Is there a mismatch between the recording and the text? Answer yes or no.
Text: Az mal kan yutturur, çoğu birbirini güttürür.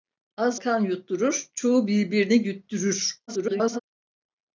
yes